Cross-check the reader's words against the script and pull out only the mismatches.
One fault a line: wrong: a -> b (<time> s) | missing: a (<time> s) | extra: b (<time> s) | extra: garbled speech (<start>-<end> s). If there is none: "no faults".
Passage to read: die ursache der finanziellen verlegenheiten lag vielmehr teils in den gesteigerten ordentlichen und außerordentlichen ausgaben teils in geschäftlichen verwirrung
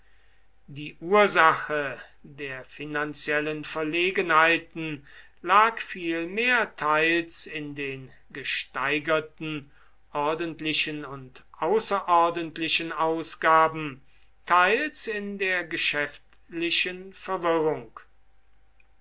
extra: der (15.4 s)